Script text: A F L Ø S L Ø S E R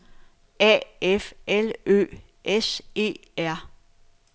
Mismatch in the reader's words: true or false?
true